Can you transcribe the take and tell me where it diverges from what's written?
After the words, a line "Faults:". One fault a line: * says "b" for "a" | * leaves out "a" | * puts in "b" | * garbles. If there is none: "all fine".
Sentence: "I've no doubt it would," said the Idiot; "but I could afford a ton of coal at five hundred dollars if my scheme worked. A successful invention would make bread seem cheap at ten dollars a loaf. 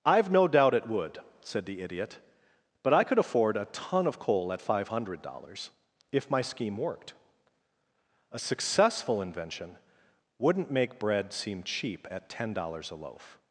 "I've no doubt it would," said the Idiot; "but I could afford a ton of coal at five hundred dollars if my scheme worked. A successful invention wouldn't make bread seem cheap at ten dollars a loaf.
Faults:
* says "wouldn't" for "would"